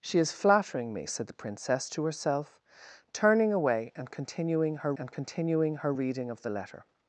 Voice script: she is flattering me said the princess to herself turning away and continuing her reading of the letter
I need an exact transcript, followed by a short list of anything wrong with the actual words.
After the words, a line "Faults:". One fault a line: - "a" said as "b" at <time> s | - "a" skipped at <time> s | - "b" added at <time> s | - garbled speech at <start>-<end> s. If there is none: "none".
she is flattering me said the princess to herself turning away and continuing her and continuing her reading of the letter
Faults:
- "and continuing her" added at 5.0 s